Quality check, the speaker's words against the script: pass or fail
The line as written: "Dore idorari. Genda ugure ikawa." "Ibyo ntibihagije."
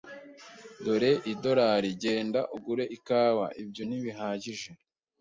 pass